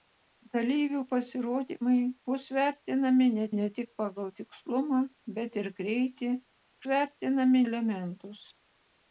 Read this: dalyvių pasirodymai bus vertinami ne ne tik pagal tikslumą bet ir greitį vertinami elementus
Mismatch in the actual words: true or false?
false